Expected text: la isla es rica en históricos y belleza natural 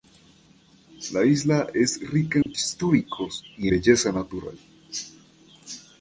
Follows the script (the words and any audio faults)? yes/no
no